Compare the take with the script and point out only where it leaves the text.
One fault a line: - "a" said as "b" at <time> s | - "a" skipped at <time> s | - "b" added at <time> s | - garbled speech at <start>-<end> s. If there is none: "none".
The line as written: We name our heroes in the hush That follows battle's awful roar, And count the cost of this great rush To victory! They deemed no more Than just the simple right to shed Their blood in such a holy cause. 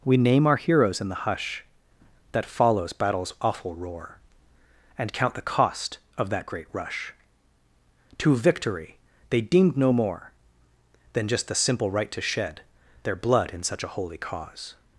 - "this" said as "that" at 6.3 s